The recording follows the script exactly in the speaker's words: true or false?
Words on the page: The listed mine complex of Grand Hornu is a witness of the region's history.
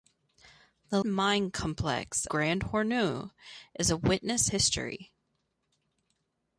false